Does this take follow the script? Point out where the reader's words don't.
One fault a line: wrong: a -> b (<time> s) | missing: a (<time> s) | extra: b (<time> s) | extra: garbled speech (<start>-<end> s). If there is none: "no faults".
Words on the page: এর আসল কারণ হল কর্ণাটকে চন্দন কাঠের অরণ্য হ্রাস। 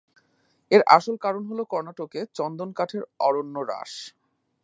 no faults